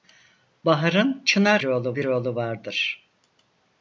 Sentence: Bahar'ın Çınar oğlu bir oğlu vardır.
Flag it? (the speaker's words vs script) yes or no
no